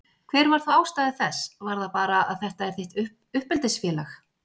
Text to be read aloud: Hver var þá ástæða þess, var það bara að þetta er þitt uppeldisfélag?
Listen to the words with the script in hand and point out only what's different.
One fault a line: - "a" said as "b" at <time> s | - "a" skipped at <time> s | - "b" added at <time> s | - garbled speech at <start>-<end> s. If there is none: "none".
none